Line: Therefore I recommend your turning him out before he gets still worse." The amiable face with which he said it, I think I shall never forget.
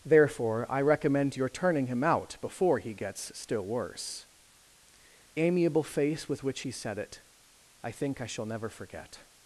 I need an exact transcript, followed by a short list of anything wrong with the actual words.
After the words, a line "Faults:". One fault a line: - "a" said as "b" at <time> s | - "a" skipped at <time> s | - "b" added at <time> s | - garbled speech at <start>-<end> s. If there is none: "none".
Therefore I recommend your turning him out before he gets still worse." Amiable face with which he said it, I think I shall never forget.
Faults:
- "The" skipped at 4.2 s